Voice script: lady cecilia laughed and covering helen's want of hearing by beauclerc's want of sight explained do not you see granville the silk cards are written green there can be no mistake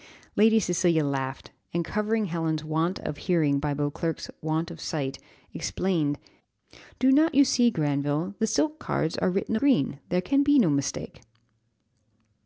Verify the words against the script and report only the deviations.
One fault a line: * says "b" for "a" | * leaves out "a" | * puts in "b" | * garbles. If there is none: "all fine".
all fine